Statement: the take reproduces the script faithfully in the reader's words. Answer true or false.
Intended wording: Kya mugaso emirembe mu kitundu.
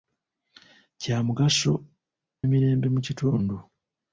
true